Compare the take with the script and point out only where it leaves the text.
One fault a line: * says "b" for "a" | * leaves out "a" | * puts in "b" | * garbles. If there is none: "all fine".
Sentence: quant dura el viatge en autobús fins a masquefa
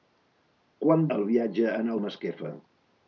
* leaves out "dura"
* leaves out "autobús fins"